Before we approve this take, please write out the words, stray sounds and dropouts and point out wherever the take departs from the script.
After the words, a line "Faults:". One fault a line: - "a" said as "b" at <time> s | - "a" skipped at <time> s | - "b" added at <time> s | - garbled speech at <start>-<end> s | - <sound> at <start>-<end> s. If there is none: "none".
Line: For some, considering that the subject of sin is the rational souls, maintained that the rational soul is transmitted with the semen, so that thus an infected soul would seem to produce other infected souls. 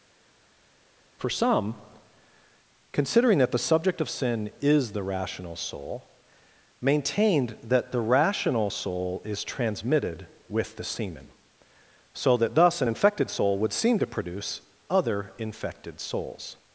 For some, considering that the subject of sin is the rational soul, maintained that the rational soul is transmitted with the semen, so that thus an infected soul would seem to produce other infected souls.
Faults:
- "souls" said as "soul" at 5.6 s